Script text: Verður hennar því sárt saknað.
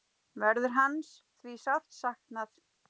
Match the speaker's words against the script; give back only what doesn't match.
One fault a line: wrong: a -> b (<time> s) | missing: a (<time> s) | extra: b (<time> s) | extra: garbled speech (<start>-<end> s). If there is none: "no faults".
wrong: hennar -> hans (0.8 s)